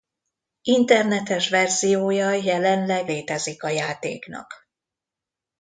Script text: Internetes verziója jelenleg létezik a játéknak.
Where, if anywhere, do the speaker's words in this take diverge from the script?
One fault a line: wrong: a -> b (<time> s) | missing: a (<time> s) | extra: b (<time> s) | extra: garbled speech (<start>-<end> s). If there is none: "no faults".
no faults